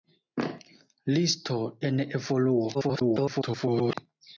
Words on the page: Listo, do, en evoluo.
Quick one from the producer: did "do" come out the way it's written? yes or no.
no